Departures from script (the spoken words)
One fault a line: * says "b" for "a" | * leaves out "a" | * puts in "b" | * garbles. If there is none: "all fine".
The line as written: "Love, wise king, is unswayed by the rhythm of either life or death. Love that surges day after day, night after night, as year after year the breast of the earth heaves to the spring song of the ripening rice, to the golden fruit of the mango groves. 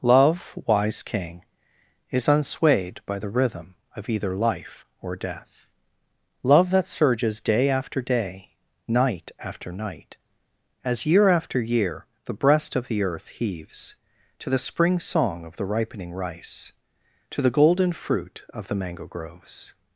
all fine